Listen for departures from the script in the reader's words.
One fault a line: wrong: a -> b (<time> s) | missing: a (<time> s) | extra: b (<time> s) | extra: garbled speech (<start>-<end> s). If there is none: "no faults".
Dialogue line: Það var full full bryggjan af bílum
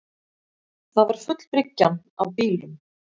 missing: full (1.4 s)